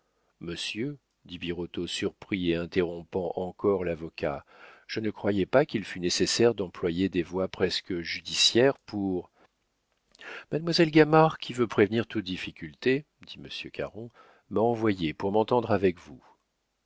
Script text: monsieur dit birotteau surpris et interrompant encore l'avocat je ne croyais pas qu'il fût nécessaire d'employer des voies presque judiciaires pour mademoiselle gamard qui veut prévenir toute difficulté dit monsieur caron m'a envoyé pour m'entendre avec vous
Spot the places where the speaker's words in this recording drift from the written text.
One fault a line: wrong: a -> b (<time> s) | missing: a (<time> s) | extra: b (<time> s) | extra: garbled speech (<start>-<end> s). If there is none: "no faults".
no faults